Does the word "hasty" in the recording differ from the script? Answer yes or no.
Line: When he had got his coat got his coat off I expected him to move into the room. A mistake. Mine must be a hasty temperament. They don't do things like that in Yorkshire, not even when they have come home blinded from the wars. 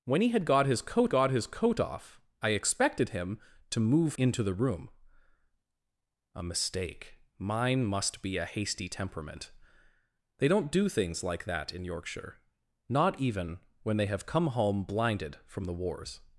no